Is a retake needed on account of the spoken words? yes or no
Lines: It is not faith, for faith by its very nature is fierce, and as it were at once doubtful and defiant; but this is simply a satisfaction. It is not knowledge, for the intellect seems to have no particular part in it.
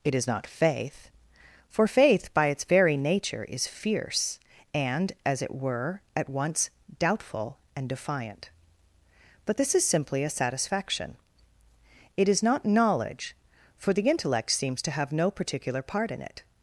no